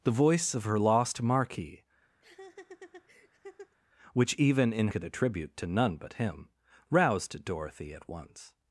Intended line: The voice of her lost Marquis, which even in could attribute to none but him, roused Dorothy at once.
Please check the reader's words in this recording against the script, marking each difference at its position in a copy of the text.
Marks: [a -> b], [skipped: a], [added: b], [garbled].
The voice of her lost Marquis, which even in could attribute to none but him, roused Dorothy at once.